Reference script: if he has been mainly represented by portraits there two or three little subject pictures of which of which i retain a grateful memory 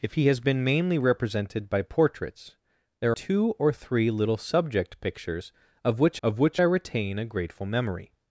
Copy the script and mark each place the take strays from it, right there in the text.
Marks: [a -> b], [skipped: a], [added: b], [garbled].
if he has been mainly represented by portraits there two or three little subject pictures of which of which i retain a grateful memory